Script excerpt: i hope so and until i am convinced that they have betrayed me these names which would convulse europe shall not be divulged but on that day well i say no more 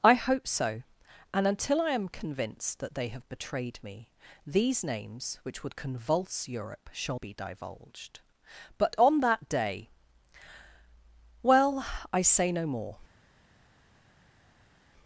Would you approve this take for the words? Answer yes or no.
no